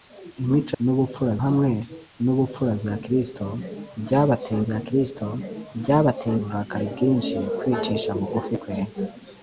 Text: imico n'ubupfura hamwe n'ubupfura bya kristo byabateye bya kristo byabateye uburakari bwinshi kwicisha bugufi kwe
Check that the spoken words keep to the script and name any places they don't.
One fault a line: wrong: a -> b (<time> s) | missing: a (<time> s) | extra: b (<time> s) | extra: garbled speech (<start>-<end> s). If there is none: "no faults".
no faults